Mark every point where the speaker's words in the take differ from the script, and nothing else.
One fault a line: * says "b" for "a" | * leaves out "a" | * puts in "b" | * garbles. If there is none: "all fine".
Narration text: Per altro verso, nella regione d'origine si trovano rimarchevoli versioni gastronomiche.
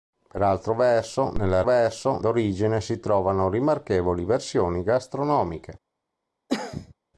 * says "verso" for "regione"